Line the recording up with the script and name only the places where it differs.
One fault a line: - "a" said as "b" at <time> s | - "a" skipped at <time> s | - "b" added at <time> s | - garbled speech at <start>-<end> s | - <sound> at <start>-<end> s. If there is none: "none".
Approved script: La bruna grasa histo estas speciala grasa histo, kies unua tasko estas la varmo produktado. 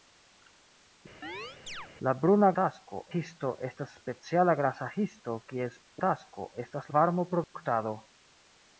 - chirp at 1.2-1.9 s
- "grasa" said as "tasko" at 2.6 s
- "unua" skipped at 5.8 s
- "la" skipped at 6.9 s
- dropout at 7.4-7.5 s